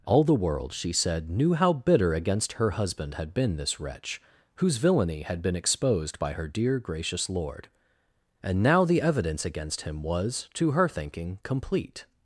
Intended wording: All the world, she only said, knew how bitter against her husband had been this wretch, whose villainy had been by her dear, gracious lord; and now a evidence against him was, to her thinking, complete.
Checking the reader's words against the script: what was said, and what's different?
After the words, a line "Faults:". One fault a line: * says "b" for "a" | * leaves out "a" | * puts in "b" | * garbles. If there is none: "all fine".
All the world, she said, knew how bitter against her husband had been this wretch, whose villainy had been exposed by her dear, gracious lord; and now the evidence against him was, to her thinking, complete.
Faults:
* leaves out "only"
* puts in "exposed"
* says "the" for "a"